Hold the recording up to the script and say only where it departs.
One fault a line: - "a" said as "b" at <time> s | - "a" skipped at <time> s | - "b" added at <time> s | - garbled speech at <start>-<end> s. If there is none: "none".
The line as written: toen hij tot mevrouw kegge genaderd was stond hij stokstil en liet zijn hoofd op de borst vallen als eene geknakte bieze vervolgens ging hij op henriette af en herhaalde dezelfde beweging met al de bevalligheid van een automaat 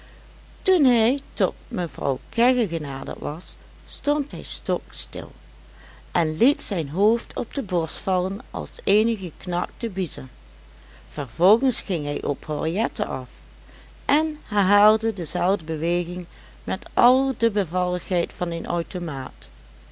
none